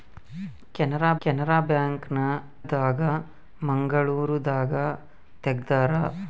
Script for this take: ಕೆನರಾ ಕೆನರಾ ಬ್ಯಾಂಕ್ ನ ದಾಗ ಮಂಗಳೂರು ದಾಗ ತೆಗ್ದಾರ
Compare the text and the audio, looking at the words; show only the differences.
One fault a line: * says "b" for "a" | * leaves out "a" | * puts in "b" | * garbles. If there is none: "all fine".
all fine